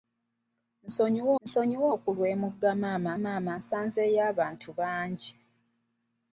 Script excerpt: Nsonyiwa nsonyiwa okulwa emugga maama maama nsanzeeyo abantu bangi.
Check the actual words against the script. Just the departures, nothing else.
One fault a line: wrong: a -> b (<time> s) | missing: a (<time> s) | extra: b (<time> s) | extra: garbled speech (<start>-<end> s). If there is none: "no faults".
no faults